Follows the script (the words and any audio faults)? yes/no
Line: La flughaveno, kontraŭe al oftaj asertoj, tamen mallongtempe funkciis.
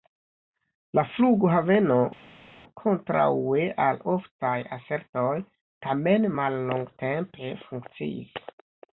yes